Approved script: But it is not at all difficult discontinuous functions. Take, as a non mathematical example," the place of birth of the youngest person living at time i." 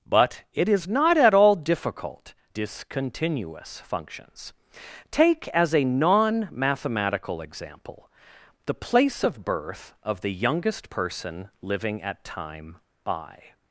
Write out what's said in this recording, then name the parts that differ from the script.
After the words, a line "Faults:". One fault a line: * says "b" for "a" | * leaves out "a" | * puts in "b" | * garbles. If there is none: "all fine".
But it is not at all difficult discontinuous functions. Take, as a non mathematical example," the place of birth of the youngest person living at time i."
Faults:
all fine